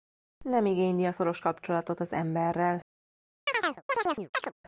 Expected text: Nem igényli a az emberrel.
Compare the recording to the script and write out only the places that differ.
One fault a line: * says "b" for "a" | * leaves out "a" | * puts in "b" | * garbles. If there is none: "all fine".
* puts in "szoros kapcsolatot"